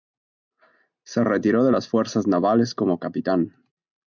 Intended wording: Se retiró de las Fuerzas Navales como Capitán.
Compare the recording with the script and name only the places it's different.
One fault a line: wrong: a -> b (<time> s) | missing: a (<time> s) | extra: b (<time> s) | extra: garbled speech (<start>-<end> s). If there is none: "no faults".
no faults